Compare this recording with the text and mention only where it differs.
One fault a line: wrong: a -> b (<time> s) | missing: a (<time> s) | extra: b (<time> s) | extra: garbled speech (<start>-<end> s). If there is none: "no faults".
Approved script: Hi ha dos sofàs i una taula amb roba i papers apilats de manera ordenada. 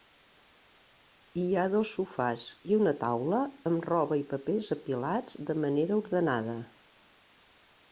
no faults